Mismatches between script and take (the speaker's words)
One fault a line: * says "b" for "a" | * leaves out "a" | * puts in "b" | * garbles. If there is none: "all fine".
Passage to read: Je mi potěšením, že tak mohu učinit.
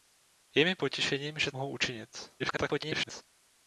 * leaves out "tak"
* garbles